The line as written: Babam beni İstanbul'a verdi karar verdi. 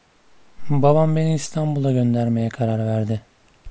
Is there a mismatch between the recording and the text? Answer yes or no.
yes